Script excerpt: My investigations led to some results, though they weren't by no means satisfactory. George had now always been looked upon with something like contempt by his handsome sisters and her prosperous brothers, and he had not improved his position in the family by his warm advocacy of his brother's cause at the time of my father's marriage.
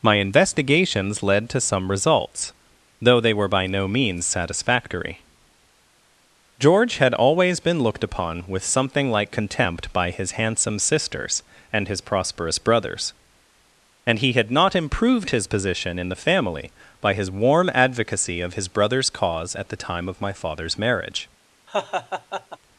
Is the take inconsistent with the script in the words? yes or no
yes